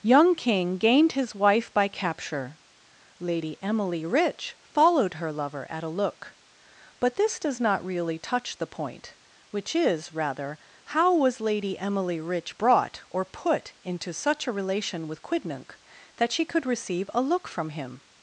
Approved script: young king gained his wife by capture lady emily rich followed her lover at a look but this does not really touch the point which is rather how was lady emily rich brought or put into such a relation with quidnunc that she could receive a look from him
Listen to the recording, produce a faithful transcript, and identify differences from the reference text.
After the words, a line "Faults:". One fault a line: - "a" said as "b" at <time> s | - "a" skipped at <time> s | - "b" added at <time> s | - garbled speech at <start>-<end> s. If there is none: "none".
young king gained his wife by capture lady emily rich followed her lover at a look but this does not really touch the point which is rather how was lady emily rich brought or put into such a relation with quidnunc that she could receive a look from him
Faults:
none